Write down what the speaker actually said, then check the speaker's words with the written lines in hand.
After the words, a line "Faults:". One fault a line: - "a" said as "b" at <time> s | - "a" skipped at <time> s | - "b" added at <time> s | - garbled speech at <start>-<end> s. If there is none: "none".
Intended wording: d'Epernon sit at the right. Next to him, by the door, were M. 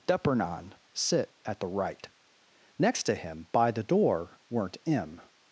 d'Epernon sit at the right. Next to him, by the door, weren't M.
Faults:
- "were" said as "weren't" at 4.5 s